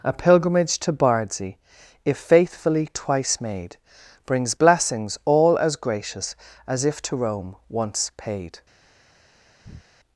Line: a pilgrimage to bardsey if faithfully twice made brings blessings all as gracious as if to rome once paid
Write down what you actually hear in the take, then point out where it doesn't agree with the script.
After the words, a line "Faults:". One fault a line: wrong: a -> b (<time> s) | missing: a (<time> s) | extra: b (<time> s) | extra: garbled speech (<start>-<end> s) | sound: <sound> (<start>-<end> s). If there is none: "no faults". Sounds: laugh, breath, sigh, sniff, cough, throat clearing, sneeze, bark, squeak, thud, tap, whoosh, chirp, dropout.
a pilgrimage to bardsey if faithfully twice made brings blessings all as gracious as if to rome once paid
Faults:
sound: breath (9.6-9.8 s)